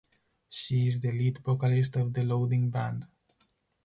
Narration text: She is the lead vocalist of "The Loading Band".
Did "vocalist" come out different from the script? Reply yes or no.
no